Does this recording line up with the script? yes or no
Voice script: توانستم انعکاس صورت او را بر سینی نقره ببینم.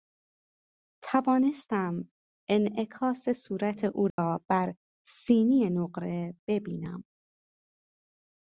yes